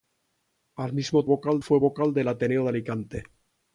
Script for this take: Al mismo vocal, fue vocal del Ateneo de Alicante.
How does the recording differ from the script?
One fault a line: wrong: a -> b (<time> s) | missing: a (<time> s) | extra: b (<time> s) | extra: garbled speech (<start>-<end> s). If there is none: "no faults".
no faults